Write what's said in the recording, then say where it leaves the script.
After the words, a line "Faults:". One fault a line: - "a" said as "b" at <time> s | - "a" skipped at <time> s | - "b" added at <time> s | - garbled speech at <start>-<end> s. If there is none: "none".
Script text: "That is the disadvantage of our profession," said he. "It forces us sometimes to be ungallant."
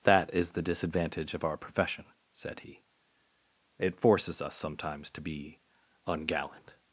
"That is the disadvantage of our profession," said he. "It forces us sometimes to be ungallant."
Faults:
none